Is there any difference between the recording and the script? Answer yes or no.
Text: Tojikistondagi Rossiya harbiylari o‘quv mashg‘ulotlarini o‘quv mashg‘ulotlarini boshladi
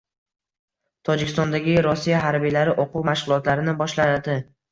yes